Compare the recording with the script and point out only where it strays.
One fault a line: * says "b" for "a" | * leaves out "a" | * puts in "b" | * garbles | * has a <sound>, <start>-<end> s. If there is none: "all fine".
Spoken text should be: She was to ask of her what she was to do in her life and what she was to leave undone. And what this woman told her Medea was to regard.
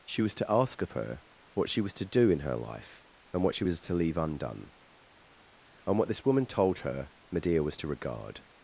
all fine